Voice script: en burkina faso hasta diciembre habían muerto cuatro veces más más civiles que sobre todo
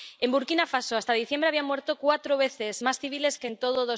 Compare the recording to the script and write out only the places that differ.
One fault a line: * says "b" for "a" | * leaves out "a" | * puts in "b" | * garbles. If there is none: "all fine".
* leaves out "más"
* says "en" for "sobre"